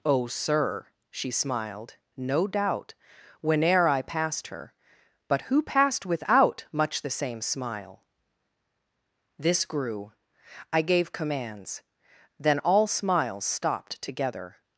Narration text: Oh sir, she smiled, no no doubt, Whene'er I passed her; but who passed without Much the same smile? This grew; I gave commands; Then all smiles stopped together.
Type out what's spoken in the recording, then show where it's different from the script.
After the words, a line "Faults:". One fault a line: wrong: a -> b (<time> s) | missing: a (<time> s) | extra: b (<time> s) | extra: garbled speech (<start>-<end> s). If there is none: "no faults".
Oh sir, she smiled, no doubt, Whene'er I passed her; but who passed without Much the same smile? This grew; I gave commands; Then all smiles stopped together.
Faults:
missing: no (2.5 s)